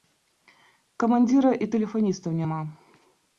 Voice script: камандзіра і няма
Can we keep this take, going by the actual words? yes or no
no